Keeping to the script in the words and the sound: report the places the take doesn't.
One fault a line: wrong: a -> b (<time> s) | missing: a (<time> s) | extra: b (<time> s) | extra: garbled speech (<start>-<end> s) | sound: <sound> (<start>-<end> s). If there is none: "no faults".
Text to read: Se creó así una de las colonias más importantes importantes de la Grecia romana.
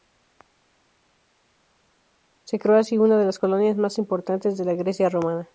missing: importantes (4.6 s)